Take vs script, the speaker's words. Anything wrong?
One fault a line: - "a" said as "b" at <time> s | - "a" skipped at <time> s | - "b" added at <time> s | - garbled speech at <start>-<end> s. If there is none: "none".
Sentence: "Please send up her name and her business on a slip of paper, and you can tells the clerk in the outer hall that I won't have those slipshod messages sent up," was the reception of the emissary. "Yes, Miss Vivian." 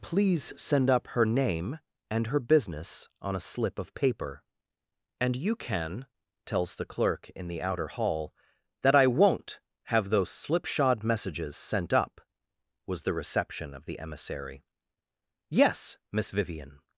none